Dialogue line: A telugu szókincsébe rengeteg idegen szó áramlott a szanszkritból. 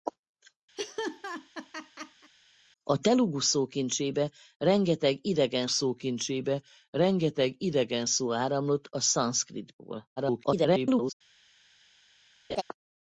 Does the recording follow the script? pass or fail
fail